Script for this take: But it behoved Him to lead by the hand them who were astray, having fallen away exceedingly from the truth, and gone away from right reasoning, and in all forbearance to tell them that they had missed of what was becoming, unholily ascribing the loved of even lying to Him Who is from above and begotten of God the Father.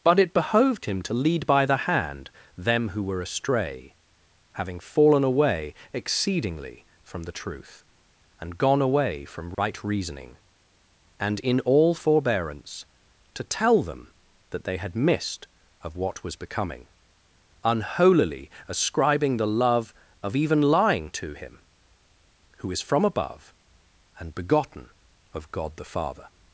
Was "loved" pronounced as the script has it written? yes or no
no